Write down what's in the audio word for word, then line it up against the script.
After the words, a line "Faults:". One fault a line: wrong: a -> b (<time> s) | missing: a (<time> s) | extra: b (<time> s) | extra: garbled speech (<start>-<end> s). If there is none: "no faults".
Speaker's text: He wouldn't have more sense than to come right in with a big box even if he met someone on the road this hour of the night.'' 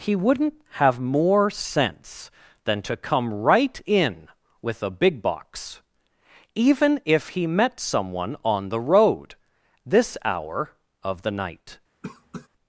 He wouldn't have more sense than to come right in with a big box even if he met someone on the road this hour of the night.''
Faults:
no faults